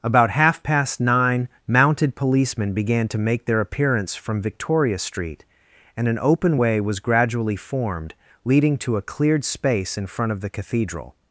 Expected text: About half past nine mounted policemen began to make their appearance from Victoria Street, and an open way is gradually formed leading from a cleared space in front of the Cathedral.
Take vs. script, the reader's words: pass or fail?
fail